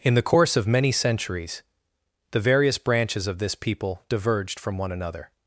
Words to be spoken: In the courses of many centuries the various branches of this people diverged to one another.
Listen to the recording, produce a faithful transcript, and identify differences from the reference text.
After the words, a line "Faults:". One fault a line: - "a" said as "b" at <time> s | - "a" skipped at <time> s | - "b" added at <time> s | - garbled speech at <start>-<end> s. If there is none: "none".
In the course of many centuries the various branches of this people diverged from one another.
Faults:
- "courses" said as "course" at 0.2 s
- "to" said as "from" at 4.6 s